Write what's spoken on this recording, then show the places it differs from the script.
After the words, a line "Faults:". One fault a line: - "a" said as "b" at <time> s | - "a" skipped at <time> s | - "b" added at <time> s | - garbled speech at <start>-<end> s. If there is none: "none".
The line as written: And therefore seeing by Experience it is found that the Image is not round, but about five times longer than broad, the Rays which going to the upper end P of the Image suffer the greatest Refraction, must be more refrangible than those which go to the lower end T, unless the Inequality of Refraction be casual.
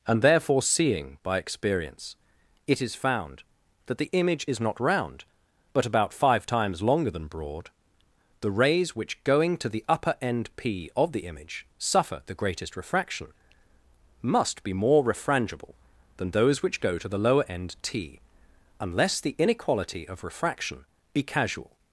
And therefore seeing by Experience it is found that the Image is not round, but about five times longer than broad, the Rays which going to the upper end P of the Image suffer the greatest Refraction, must be more refrangible than those which go to the lower end T, unless the Inequality of Refraction be casual.
Faults:
none